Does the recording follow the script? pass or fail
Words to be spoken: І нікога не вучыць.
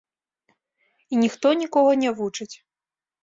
fail